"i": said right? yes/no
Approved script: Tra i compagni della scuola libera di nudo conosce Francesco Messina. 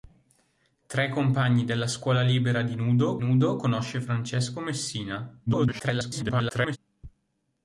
yes